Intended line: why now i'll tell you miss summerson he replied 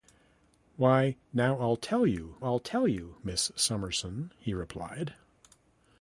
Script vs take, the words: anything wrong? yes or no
yes